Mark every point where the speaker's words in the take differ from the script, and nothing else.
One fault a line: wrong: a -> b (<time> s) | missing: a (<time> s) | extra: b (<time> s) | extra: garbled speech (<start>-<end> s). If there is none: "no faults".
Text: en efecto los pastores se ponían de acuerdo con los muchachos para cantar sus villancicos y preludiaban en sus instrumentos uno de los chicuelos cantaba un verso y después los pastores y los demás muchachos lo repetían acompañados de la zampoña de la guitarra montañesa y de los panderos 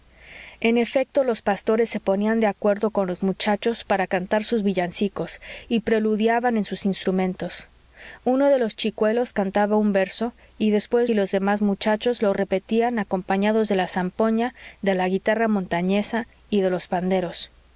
missing: los pastores (11.1 s)